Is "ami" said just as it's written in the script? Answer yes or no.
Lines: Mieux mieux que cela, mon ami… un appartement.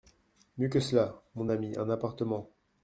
yes